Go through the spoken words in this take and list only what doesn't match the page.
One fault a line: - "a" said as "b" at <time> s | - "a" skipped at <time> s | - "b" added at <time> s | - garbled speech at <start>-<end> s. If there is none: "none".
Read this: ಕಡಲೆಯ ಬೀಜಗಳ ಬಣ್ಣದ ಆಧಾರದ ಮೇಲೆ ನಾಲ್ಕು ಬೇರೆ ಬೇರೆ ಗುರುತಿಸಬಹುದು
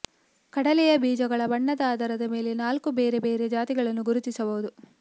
- "ಜಾತಿಗಳನ್ನು" added at 3.5 s